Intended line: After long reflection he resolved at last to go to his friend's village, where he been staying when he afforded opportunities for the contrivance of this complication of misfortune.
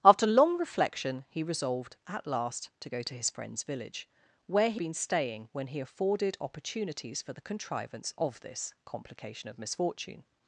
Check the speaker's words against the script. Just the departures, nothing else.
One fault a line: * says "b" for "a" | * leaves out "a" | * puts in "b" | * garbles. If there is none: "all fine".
all fine